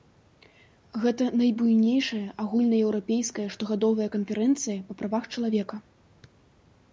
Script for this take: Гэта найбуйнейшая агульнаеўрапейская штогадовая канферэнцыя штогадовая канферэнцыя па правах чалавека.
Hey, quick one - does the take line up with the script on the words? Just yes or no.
no